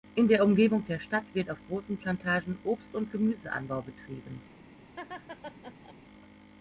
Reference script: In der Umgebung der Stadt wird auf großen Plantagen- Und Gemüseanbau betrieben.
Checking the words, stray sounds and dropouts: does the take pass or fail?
fail